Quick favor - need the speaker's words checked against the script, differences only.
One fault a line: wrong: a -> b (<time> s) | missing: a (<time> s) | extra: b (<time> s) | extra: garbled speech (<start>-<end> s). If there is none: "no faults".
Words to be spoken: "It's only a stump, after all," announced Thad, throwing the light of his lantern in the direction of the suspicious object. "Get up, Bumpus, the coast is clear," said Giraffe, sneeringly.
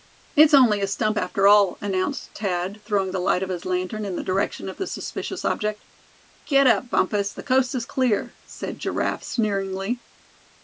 no faults